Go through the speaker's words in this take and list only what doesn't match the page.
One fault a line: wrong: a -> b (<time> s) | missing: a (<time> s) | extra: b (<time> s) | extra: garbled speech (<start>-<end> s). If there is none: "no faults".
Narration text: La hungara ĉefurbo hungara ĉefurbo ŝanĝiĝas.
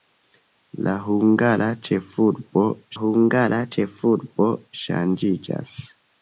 no faults